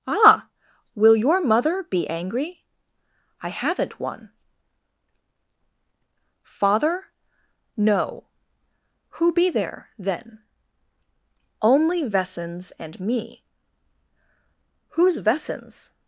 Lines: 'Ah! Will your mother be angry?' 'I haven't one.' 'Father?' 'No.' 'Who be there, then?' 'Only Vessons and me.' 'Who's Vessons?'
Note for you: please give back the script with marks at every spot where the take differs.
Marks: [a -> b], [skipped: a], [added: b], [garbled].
'Ah! Will your mother be angry?' 'I haven't one.' 'Father?' 'No.' 'Who be there, then?' 'Only Vessons and me.' 'Who's Vessons?'